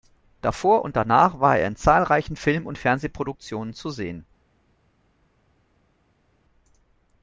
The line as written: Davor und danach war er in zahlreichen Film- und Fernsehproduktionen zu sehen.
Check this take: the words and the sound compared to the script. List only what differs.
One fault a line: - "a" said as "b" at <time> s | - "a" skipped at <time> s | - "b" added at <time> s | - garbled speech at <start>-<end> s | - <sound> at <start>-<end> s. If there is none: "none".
none